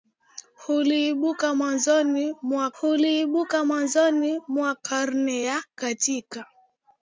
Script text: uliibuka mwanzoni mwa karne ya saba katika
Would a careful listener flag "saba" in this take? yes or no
yes